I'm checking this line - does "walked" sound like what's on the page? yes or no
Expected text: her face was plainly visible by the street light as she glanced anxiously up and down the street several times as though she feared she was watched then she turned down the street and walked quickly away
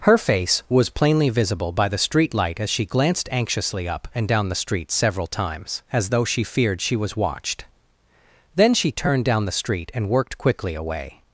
no